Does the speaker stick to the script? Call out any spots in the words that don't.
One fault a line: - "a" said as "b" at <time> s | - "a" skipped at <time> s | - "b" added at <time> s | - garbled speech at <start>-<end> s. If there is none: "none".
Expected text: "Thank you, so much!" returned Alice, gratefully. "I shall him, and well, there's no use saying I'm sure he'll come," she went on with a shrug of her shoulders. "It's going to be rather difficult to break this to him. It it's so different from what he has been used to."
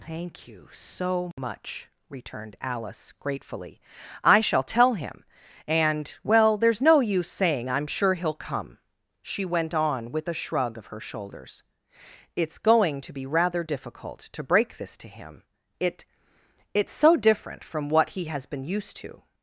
- "tell" added at 4.6 s